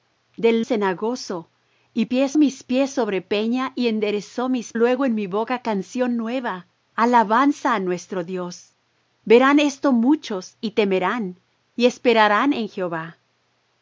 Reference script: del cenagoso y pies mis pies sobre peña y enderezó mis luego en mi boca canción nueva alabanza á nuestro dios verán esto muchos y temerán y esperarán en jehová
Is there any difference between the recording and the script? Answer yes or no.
no